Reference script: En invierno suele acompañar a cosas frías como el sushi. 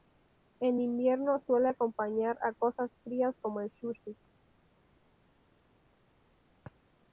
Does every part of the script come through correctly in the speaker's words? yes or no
yes